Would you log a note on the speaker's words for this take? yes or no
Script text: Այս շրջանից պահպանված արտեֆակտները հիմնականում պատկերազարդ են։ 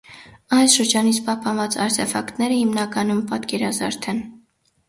no